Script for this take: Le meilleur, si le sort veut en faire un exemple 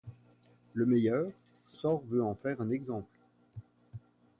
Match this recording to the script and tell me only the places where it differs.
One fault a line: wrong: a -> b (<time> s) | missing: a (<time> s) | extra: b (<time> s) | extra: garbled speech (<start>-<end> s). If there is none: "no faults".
missing: le (1.8 s)